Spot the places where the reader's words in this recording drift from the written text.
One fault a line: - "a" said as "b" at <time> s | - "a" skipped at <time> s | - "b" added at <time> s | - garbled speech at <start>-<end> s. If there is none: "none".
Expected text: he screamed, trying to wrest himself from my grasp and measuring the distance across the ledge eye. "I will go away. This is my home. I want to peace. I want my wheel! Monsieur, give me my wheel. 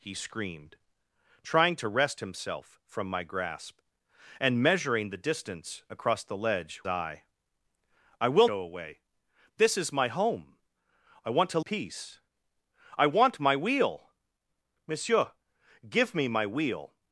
none